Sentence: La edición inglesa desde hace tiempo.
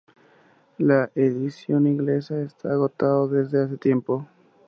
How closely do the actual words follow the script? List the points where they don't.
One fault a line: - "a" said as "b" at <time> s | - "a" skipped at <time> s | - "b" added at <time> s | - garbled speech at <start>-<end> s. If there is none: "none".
- "está agotado" added at 2.4 s